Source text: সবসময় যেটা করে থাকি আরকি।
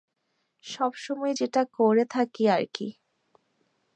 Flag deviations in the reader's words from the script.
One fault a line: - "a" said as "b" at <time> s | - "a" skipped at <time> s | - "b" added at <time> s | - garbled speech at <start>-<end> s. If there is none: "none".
none